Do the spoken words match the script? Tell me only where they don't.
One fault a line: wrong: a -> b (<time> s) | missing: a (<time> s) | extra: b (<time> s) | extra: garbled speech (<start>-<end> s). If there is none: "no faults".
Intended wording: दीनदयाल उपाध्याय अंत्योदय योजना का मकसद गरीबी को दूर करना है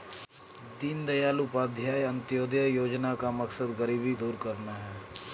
missing: को (4.1 s)